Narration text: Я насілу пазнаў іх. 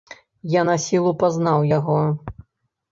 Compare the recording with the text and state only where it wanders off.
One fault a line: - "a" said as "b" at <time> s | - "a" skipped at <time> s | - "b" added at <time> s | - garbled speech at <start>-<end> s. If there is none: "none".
- "іх" said as "яго" at 1.8 s